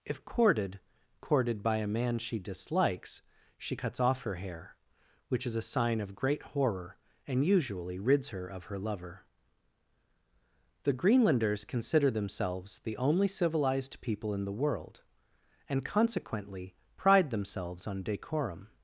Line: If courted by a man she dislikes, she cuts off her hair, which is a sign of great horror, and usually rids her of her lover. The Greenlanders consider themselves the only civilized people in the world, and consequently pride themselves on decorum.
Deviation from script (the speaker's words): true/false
true